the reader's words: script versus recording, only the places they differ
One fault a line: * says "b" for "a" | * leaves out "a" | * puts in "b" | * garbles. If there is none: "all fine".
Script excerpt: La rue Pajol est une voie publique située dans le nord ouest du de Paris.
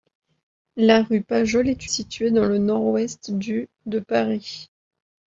* leaves out "une voie publique"